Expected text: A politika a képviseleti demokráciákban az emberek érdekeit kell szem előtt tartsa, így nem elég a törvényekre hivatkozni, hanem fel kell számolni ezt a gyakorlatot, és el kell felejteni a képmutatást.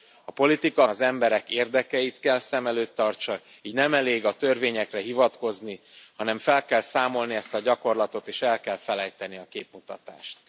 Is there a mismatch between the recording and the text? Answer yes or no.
yes